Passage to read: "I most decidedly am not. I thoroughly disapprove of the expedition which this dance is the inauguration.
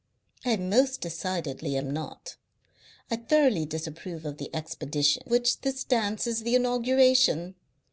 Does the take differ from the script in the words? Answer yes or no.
no